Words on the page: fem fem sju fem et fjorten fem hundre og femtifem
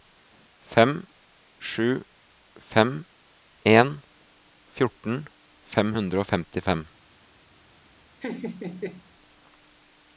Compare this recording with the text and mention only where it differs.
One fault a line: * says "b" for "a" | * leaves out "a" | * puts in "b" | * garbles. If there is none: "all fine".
* leaves out "fem"
* says "en" for "et"